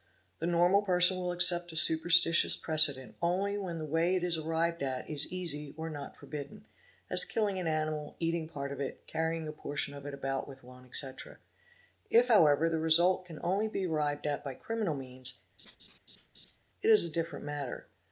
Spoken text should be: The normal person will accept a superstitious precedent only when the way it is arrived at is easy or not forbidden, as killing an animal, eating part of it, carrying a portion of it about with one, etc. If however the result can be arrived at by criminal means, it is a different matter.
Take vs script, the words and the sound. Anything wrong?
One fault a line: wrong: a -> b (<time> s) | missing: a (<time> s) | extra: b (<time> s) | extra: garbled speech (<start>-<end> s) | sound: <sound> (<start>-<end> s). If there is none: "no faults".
extra: only (13.4 s)
sound: laugh (15.6-16.6 s)